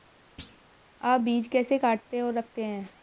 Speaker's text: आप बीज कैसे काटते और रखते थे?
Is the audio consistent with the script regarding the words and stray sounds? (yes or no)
no